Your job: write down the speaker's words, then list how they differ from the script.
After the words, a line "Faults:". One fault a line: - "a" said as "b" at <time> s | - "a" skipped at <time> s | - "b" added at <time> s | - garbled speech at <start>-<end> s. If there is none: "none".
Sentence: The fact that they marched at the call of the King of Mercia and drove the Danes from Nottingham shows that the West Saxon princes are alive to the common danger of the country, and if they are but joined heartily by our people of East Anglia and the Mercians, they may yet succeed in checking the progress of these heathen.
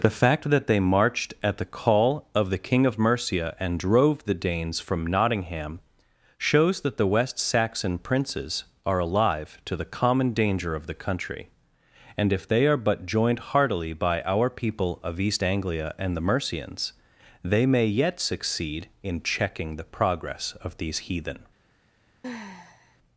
The fact that they marched at the call of the King of Mercia and drove the Danes from Nottingham shows that the West Saxon princes are alive to the common danger of the country, and if they are but joined heartily by our people of East Anglia and the Mercians, they may yet succeed in checking the progress of these heathen.
Faults:
none